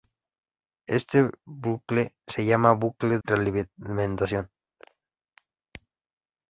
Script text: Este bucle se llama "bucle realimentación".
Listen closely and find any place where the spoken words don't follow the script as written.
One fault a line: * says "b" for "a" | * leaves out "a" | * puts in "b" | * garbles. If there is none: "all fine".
all fine